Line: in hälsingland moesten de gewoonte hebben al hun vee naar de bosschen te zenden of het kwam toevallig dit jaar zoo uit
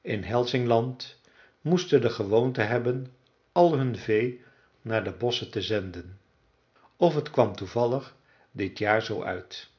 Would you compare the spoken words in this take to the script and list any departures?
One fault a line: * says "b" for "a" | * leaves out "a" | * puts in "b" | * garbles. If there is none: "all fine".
all fine